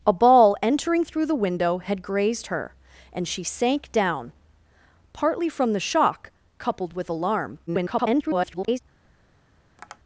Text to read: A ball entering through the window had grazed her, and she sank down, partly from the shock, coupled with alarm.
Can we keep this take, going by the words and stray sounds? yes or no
no